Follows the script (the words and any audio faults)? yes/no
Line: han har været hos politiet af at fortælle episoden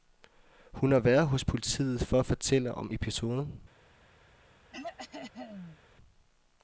no